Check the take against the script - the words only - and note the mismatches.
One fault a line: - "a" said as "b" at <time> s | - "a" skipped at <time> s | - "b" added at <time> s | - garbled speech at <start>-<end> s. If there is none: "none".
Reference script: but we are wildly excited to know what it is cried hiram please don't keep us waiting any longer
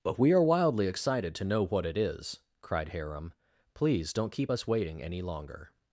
none